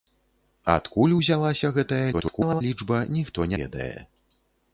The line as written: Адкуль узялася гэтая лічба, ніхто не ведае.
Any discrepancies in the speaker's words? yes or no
yes